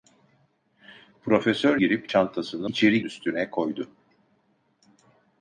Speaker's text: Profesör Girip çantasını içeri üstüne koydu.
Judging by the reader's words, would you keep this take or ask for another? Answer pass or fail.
pass